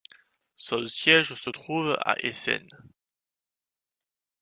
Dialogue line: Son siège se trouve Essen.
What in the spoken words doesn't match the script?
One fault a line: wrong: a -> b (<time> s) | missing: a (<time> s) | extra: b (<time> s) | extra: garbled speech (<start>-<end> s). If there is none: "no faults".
extra: à (2.0 s)